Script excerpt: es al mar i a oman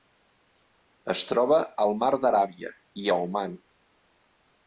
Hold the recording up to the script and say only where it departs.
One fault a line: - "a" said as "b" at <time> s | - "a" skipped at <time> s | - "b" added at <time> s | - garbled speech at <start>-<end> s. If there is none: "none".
- "troba" added at 1.3 s
- "d'aràbia" added at 2.2 s